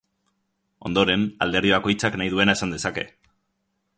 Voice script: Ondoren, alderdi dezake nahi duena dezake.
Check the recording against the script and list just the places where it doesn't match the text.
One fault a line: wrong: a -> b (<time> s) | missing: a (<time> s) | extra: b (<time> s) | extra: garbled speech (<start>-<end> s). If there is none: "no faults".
wrong: dezake -> bakoitzak (1.8 s)
extra: esan (2.6 s)